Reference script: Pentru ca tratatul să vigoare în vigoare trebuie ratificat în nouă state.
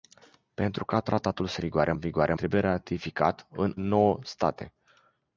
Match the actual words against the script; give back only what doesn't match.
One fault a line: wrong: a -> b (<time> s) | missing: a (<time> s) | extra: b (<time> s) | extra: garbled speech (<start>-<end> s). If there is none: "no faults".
no faults